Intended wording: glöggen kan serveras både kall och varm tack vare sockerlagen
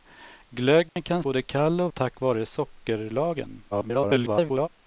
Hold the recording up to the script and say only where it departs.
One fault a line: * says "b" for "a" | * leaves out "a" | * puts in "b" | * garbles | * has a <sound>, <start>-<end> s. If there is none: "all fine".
* has a dropout, 0.9-1.0 s
* leaves out "serveras"
* leaves out "varm"
* garbles